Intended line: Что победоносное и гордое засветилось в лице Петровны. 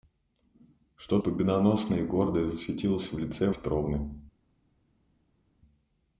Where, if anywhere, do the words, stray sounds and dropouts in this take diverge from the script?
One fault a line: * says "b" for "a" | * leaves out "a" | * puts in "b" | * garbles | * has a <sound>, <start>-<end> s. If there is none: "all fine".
all fine